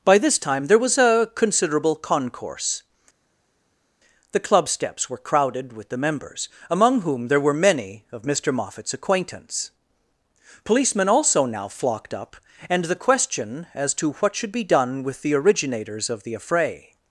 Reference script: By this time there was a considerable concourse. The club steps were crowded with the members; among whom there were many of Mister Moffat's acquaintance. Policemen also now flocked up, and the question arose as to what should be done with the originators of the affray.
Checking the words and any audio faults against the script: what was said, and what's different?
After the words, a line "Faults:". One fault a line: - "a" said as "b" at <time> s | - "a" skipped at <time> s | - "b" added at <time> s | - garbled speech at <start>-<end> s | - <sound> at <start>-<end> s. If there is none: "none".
By this time there was a considerable concourse. The club steps were crowded with the members; among whom there were many of Mister Moffat's acquaintance. Policemen also now flocked up, and the question as to what should be done with the originators of the affray.
Faults:
- "arose" skipped at 13.7 s